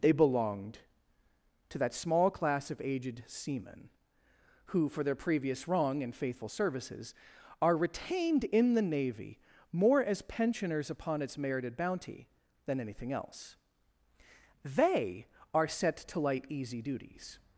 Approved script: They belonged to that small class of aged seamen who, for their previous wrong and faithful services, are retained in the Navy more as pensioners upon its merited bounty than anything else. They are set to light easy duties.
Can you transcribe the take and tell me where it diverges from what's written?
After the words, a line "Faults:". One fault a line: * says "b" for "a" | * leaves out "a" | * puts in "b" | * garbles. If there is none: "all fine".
They belonged to that small class of aged seamen who, for their previous wrong and faithful services, are retained in the Navy more as pensioners upon its merited bounty than anything else. They are set to light easy duties.
Faults:
all fine